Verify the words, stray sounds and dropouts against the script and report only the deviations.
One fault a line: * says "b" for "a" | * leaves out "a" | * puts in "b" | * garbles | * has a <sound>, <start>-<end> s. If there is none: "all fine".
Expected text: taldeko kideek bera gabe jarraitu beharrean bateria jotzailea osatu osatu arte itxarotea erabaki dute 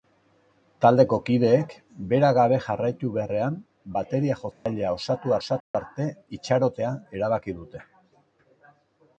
* has a dropout, 4.5-4.7 s
* has a dropout, 5.6-5.7 s